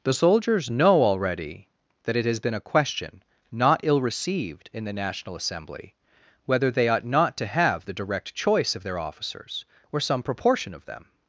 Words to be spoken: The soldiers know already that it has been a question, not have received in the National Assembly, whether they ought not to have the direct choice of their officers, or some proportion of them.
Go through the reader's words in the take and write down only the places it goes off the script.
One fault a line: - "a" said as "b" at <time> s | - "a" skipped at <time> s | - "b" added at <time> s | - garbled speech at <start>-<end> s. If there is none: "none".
- "have" said as "ill" at 3.8 s